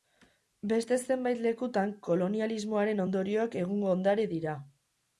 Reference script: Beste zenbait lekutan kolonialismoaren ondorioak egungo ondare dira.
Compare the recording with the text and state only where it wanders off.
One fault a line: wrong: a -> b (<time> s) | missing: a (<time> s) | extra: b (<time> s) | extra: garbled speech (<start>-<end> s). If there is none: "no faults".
no faults